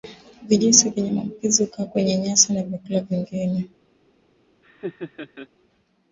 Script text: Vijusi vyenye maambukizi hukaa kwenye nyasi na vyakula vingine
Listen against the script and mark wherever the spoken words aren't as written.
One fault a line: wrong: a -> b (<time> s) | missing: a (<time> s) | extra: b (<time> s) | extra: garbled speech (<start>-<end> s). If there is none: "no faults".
no faults